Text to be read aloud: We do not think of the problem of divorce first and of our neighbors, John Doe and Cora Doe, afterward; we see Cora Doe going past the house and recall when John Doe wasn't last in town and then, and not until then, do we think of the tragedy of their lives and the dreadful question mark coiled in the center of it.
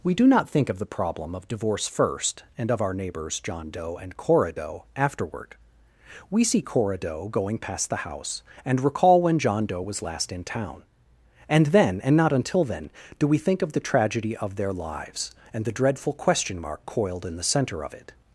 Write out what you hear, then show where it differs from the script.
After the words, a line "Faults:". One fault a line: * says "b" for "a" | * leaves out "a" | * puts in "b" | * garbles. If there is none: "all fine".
We do not think of the problem of divorce first and of our neighbors, John Doe and Cora Doe, afterward; we see Cora Doe going past the house and recall when John Doe was last in town and then, and not until then, do we think of the tragedy of their lives and the dreadful question mark coiled in the center of it.
Faults:
* says "was" for "wasn't"